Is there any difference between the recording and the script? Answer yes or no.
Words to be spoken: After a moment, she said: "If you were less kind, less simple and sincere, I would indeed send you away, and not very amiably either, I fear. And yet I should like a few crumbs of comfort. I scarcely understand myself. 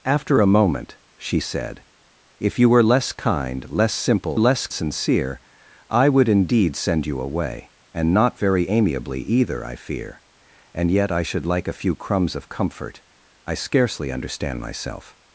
yes